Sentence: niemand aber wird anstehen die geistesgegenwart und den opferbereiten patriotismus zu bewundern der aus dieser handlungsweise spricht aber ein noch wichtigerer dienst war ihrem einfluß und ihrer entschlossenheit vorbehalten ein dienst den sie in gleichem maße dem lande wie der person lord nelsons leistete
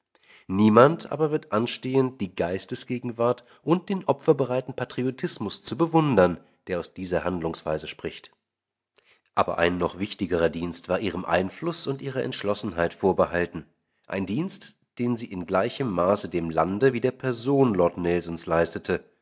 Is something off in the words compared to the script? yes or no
no